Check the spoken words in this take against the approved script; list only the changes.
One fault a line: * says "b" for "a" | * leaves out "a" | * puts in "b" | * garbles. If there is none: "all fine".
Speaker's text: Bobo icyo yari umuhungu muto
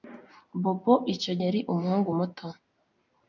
all fine